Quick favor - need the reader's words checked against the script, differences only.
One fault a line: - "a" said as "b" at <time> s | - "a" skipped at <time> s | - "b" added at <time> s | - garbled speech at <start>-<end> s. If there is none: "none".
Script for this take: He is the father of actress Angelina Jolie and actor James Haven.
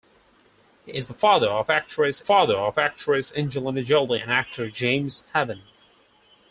- "father of actress" added at 2.2 s